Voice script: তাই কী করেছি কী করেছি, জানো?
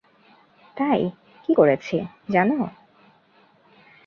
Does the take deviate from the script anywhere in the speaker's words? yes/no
yes